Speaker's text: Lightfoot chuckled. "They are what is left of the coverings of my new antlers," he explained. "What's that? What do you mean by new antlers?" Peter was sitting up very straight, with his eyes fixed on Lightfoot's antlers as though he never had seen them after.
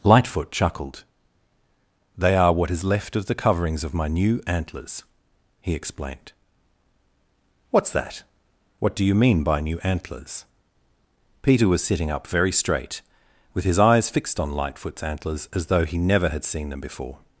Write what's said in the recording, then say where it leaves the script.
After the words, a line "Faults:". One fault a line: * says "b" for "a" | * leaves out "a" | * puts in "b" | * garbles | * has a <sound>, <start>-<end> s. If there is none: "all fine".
Lightfoot chuckled. "They are what is left of the coverings of my new antlers," he explained. "What's that? What do you mean by new antlers?" Peter was sitting up very straight, with his eyes fixed on Lightfoot's antlers as though he never had seen them before.
Faults:
* says "before" for "after"